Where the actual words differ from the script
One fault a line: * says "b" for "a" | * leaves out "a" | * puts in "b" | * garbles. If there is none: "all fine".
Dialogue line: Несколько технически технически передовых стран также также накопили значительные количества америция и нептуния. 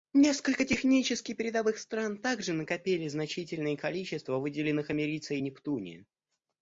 * leaves out "технически"
* leaves out "также"
* puts in "выделенных"